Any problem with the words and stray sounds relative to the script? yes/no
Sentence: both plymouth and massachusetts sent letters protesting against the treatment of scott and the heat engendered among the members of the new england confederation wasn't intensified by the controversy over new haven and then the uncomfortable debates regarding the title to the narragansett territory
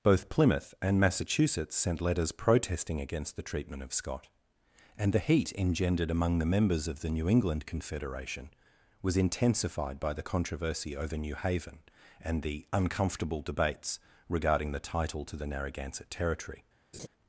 yes